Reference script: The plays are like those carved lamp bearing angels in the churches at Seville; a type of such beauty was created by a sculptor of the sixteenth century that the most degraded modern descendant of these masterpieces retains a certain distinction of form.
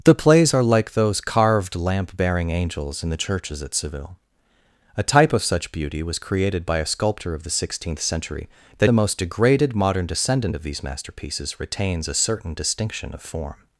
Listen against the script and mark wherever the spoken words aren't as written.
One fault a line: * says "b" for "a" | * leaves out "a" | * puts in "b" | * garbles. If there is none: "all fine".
all fine